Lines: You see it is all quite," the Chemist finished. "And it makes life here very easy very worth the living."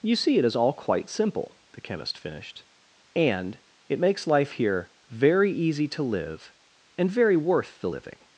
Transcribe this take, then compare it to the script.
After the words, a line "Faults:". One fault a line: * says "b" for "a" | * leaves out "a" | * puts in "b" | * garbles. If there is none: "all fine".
You see it is all quite simple," the Chemist finished. "And it makes life here very easy to live, and very worth the living."
Faults:
* puts in "simple"
* puts in "to live and"